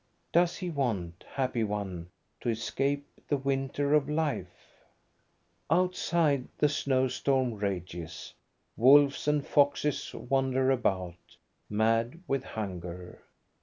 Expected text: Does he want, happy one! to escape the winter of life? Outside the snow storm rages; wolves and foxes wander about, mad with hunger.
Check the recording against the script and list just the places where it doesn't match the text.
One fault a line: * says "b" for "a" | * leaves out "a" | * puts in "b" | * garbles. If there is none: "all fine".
all fine